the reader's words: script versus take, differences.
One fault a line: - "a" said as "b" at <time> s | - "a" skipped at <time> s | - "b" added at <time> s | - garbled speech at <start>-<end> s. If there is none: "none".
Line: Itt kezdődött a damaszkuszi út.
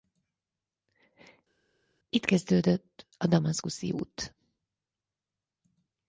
none